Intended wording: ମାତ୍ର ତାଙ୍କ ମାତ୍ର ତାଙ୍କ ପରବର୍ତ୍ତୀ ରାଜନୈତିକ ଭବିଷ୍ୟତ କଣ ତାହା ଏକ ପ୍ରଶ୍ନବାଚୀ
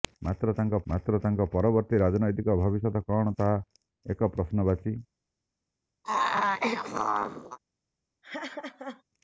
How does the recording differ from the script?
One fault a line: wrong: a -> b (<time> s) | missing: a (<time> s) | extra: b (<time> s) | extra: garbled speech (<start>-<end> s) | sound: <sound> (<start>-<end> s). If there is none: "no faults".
sound: throat clearing (6.0-7.6 s)
sound: laugh (8.2-9.0 s)